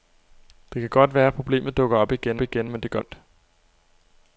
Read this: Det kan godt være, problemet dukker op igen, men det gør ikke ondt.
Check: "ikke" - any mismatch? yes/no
yes